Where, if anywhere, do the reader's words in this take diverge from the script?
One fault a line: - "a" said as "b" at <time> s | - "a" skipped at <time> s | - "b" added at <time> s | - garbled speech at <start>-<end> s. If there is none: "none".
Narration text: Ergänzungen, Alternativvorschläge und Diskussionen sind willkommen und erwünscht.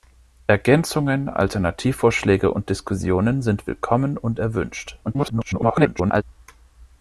- garbled speech at 5.0-6.2 s